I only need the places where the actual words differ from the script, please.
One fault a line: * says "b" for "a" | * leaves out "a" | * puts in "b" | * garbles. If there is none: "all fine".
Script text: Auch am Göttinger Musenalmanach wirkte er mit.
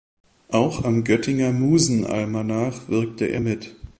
all fine